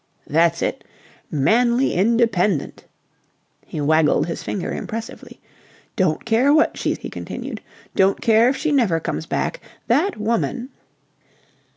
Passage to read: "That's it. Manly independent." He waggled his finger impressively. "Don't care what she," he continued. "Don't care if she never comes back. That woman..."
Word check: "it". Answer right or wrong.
right